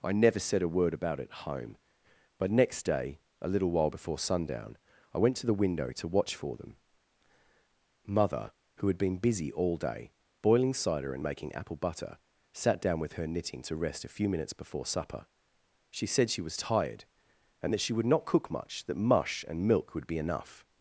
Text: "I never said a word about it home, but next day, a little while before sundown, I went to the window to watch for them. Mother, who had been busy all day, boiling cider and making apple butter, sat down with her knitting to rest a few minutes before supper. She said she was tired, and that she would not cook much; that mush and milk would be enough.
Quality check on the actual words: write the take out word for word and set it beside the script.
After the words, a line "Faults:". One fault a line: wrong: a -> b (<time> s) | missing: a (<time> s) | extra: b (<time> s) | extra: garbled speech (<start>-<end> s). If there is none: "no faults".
"I never said a word about it home, but next day, a little while before sundown, I went to the window to watch for them. Mother, who had been busy all day, boiling cider and making apple butter, sat down with her knitting to rest a few minutes before supper. She said she was tired, and that she would not cook much; that mush and milk would be enough.
Faults:
no faults